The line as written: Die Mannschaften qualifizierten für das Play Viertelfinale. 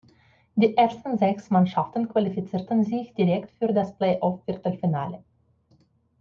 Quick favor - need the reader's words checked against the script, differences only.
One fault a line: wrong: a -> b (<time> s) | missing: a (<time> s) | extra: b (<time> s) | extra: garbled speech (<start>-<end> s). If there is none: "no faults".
extra: ersten sechs (0.8 s)
extra: sich direkt (2.8 s)
extra: off (4.2 s)